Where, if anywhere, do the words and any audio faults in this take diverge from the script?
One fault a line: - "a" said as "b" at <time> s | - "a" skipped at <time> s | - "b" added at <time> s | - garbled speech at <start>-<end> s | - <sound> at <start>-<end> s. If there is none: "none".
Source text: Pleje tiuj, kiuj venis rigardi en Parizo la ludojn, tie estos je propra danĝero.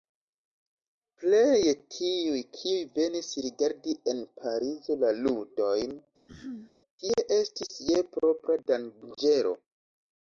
- throat clearing at 6.3-6.7 s
- "estos" said as "estis" at 7.4 s